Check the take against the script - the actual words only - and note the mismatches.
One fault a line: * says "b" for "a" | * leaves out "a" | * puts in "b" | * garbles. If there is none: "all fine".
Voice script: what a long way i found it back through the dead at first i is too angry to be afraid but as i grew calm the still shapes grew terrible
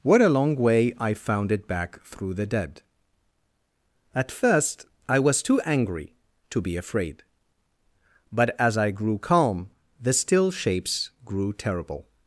* says "was" for "is"